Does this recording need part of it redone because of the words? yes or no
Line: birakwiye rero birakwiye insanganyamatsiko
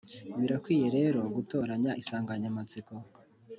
yes